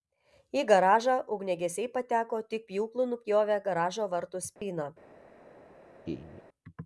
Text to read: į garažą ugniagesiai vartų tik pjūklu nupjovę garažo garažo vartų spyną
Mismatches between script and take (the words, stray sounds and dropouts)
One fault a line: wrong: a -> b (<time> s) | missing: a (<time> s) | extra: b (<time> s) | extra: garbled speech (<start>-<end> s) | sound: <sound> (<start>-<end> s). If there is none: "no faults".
wrong: vartų -> pateko (2.0 s)
missing: garažo (4.1 s)
sound: dropout (4.6-4.6 s)
sound: laugh (6.0-6.4 s)